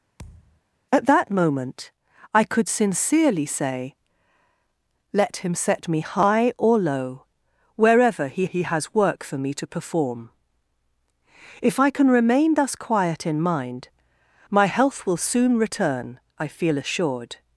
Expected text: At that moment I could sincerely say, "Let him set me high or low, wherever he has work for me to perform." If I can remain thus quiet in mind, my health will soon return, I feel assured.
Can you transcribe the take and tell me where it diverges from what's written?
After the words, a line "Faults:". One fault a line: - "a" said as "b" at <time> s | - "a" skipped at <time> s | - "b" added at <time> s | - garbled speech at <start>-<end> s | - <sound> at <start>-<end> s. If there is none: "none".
At that moment I could sincerely say, "Let him set me high or low, wherever he he has work for me to perform." If I can remain thus quiet in mind, my health will soon return, I feel assured.
Faults:
- thud at 0.2-0.6 s
- "he" added at 8.4 s